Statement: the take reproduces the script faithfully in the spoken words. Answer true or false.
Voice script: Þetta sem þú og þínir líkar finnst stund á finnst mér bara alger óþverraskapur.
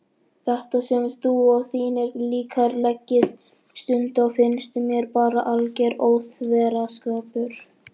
false